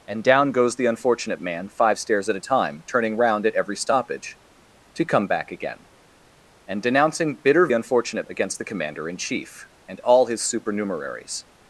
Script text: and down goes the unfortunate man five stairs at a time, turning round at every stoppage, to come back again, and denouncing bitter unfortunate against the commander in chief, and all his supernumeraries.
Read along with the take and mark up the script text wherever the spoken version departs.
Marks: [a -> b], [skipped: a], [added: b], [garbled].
and down goes the unfortunate man five stairs at a time, turning round at every stoppage, to come back again, and denouncing bitter unfortunate against the commander in chief, and all his supernumeraries.